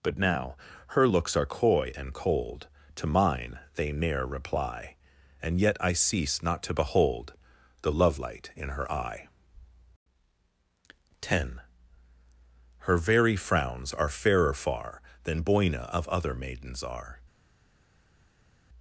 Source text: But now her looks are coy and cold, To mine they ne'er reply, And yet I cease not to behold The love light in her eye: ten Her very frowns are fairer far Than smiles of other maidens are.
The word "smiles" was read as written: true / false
false